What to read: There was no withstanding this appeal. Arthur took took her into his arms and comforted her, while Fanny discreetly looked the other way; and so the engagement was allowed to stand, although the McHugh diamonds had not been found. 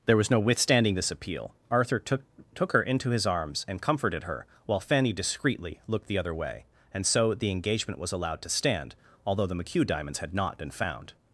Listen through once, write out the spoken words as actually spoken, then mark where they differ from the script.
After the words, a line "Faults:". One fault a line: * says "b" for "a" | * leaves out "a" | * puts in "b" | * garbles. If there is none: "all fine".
There was no withstanding this appeal. Arthur took took her into his arms and comforted her, while Fanny discreetly looked the other way; and so the engagement was allowed to stand, although the McHugh diamonds had not been found.
Faults:
all fine